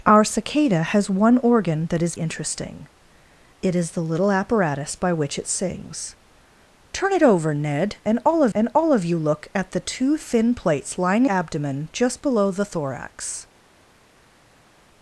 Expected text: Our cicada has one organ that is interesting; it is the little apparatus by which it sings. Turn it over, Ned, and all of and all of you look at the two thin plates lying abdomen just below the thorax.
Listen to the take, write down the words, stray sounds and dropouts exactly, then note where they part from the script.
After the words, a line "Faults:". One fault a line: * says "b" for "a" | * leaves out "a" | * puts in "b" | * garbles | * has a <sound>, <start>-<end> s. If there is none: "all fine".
Our cicada has one organ that is interesting; it is the little apparatus by which it sings. Turn it over, Ned, and all of and all of you look at the two thin plates lying abdomen just below the thorax.
Faults:
all fine